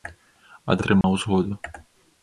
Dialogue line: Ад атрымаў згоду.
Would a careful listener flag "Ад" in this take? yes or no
no